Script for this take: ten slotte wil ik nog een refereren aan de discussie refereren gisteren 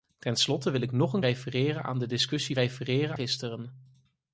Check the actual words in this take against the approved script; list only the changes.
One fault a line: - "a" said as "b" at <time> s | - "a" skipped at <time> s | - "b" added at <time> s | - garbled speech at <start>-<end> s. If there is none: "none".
none